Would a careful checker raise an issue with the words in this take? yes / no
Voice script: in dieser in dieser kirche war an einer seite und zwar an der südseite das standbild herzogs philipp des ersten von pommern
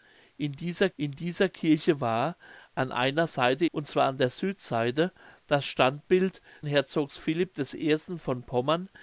no